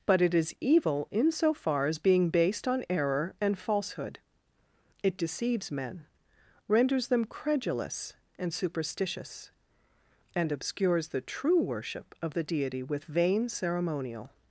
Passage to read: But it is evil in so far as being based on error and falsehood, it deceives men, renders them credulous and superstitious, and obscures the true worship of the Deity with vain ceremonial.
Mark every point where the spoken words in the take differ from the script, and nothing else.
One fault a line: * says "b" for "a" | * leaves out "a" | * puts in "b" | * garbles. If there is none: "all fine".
all fine